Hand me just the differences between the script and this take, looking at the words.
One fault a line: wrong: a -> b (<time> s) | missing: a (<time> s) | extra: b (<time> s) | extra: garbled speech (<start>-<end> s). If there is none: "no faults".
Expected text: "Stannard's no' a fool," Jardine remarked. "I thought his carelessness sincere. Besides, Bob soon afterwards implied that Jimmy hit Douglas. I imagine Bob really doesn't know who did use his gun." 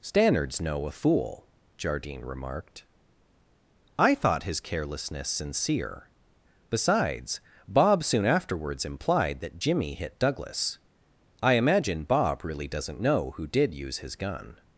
no faults